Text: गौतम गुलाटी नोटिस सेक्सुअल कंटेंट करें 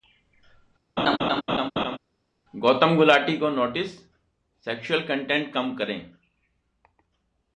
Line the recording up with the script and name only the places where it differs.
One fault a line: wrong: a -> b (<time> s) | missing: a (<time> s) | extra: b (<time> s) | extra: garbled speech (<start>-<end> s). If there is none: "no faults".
extra: को (3.4 s)
extra: कम (5.5 s)